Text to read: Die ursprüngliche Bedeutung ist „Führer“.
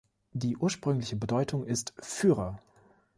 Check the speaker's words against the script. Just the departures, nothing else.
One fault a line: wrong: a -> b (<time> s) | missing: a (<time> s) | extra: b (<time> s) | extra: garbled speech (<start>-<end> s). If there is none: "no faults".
no faults